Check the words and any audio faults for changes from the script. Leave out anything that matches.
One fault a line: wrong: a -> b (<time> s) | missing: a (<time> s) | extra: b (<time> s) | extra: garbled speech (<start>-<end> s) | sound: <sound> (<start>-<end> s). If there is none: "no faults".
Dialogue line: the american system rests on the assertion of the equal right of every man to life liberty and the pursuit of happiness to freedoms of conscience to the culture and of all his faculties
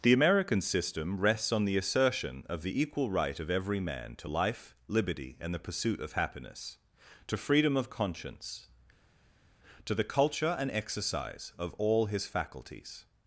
wrong: freedoms -> freedom (7.3 s)
extra: exercise (10.7 s)